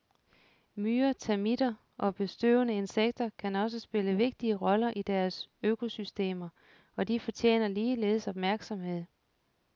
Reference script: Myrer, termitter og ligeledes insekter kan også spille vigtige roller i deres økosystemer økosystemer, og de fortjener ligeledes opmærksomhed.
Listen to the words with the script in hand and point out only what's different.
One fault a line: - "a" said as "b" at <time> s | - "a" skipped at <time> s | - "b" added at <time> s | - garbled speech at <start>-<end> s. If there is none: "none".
- "ligeledes" said as "bestøvende" at 2.1 s
- "økosystemer" skipped at 6.5 s